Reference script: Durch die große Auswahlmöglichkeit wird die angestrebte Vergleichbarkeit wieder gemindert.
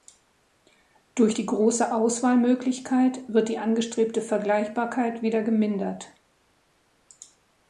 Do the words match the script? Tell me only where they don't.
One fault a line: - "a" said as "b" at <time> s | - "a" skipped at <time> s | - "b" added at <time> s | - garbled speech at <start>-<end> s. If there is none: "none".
none